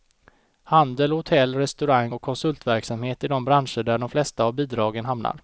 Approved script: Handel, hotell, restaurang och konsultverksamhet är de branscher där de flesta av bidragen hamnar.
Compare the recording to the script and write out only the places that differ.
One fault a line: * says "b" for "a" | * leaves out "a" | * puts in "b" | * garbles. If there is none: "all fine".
all fine